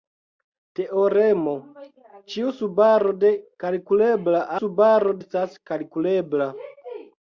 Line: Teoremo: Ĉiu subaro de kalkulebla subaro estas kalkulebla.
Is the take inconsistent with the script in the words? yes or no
no